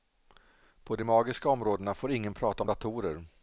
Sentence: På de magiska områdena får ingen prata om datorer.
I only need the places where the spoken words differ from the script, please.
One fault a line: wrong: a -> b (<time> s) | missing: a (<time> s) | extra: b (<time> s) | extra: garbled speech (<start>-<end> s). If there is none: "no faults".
no faults